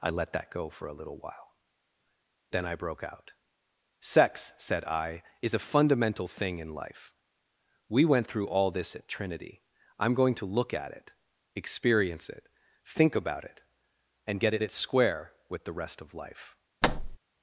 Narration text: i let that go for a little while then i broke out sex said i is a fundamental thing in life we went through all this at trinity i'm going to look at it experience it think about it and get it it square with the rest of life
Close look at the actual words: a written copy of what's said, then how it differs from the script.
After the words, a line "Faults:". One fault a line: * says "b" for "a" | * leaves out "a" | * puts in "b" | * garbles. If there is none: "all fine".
i let that go for a little while then i broke out sex said i is a fundamental thing in life we went through all this at trinity i'm going to look at it experience it think about it and get it it square with the rest of life
Faults:
all fine